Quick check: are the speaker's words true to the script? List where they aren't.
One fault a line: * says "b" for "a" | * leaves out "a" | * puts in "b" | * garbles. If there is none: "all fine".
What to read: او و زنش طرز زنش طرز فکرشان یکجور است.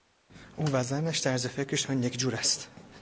* leaves out "زنش طرز"